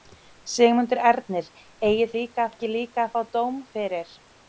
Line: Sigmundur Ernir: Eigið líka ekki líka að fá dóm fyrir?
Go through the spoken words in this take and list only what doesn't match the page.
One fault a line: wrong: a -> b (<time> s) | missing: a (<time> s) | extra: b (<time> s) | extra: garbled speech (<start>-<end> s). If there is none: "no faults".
no faults